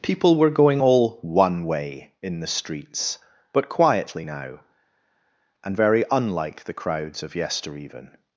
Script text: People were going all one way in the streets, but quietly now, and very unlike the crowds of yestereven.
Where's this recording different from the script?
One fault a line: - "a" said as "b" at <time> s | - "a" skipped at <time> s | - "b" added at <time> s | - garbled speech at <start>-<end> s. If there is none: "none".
none